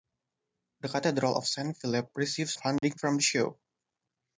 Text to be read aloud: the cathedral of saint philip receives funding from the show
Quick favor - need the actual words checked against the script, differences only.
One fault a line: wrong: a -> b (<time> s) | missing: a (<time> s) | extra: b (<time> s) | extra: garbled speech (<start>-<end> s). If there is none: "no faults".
no faults